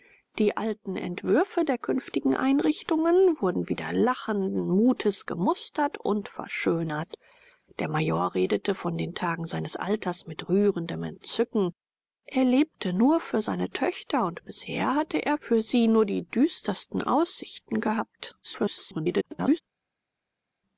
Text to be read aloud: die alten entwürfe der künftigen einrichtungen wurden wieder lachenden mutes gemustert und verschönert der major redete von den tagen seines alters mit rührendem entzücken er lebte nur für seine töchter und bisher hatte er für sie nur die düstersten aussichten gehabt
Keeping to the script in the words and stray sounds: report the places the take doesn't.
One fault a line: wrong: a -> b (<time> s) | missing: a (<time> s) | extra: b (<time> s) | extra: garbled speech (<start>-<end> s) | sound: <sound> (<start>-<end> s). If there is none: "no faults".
extra: garbled speech (18.4-19.6 s)